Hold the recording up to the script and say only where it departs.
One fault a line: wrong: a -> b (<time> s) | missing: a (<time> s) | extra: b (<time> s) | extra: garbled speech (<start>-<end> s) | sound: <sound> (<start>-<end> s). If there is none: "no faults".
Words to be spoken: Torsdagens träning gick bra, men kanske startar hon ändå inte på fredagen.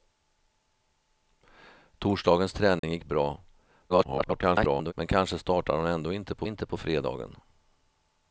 sound: dropout (2.8-2.8 s)
extra: garbled speech (3.9-4.9 s)
extra: inte på (6.4 s)